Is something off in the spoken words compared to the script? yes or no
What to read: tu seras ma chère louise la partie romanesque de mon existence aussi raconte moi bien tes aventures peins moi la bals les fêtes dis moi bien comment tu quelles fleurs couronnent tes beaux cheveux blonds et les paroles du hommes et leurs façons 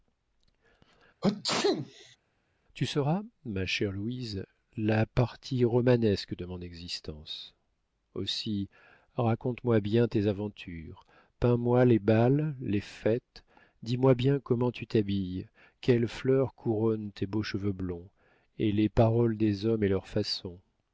yes